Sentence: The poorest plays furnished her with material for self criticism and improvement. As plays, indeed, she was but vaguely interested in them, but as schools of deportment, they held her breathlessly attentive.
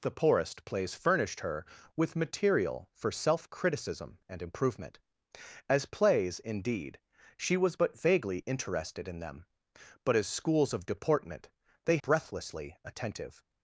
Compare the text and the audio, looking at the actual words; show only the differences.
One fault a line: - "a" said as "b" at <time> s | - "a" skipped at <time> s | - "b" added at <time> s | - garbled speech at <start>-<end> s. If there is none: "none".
- "held her" skipped at 12.0 s